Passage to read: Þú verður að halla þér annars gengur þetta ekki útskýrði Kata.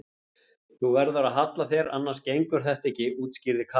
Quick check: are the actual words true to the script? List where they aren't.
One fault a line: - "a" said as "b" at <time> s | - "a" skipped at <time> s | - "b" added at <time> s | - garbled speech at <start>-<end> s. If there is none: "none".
none